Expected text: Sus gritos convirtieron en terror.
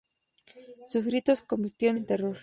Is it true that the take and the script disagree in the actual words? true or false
false